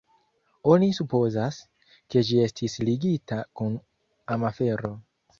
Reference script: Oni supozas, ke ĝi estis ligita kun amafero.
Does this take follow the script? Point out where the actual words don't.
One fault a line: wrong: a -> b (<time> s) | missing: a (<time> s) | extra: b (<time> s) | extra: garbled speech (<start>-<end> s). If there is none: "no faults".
no faults